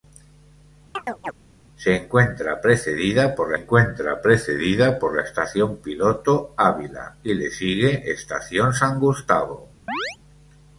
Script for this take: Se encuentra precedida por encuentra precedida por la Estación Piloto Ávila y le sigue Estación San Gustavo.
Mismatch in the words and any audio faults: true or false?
true